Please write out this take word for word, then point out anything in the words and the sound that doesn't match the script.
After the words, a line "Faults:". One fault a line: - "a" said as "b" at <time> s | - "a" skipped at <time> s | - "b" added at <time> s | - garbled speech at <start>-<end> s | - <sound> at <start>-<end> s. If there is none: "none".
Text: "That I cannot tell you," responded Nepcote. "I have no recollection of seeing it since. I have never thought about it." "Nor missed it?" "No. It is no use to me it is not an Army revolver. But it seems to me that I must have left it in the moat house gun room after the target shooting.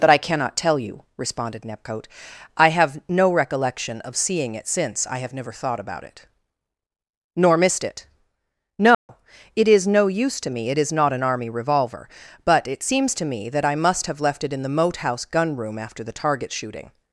"That I cannot tell you," responded Nepcote. "I have no recollection of seeing it since. I have never thought about it." "Nor missed it?" "No. It is no use to me it is not an Army revolver. But it seems to me that I must have left it in the moat house gun room after the target shooting.
Faults:
- dropout at 8.9-9.1 s